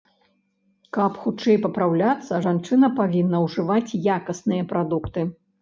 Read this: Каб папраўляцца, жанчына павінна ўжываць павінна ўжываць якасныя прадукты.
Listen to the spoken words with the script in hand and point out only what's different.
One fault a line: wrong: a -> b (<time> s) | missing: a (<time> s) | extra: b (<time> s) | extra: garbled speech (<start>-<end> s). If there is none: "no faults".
extra: хутчэй (1.2 s)
missing: павінна ўжываць (4.0 s)